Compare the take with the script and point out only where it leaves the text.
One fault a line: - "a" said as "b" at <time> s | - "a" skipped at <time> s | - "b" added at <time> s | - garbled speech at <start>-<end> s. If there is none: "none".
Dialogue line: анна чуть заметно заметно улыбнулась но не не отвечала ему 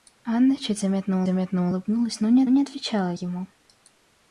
none